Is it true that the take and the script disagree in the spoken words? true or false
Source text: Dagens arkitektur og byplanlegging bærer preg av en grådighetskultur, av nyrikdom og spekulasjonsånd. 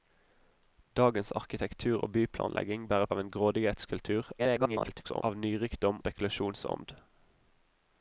true